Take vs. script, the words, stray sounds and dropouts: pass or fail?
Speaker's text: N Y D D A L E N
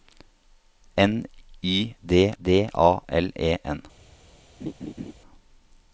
fail